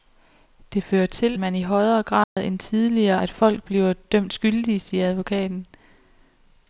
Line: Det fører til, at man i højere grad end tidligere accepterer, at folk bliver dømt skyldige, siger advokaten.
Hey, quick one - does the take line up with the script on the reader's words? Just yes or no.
no